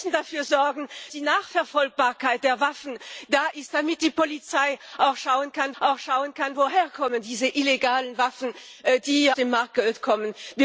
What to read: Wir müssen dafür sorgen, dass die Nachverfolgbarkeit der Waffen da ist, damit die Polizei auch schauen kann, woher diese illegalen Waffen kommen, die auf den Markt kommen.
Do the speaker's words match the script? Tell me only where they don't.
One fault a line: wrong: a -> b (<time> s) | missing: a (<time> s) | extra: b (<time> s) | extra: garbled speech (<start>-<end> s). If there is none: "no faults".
missing: dass (0.9 s)
extra: auch schauen kann (5.8 s)
missing: auf (9.3 s)